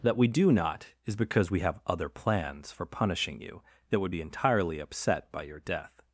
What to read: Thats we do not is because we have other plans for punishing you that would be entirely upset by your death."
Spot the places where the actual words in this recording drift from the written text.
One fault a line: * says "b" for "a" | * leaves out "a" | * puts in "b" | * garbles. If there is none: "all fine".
* says "That" for "Thats"